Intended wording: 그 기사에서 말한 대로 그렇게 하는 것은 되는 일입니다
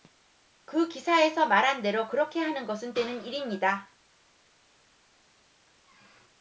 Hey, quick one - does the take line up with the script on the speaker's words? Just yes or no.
yes